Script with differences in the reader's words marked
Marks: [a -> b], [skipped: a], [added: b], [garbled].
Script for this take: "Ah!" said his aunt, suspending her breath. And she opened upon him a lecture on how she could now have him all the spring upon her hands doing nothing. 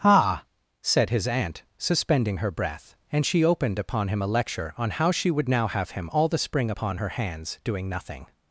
"Ah!" said his aunt, suspending her breath. And she opened upon him a lecture on how she [could -> would] now have him all the spring upon her hands doing nothing.